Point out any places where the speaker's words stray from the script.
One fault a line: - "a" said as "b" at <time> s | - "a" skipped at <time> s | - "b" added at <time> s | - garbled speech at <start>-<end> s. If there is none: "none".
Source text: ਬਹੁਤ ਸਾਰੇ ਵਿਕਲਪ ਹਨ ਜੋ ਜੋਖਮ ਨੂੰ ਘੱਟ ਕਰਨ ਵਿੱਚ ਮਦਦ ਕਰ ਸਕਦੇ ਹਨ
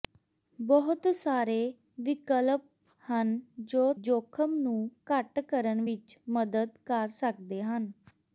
none